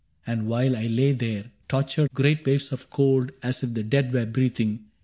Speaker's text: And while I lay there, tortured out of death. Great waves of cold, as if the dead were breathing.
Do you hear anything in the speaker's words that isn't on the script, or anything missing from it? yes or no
yes